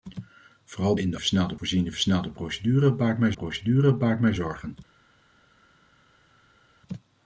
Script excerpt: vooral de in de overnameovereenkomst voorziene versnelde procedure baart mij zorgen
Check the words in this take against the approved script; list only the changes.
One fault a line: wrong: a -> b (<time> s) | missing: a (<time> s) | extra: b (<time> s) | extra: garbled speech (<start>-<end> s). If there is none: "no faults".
missing: de (0.9 s)
wrong: overnameovereenkomst -> versnelde (1.2 s)
extra: procedure baart mij (3.3 s)